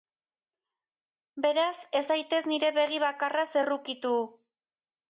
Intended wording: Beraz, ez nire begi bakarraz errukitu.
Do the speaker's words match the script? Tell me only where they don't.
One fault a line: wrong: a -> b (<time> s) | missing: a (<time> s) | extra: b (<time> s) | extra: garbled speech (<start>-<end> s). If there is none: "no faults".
extra: zaitez (2.1 s)